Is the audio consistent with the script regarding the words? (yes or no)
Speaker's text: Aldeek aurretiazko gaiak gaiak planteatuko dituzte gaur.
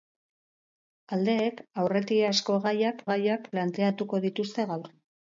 yes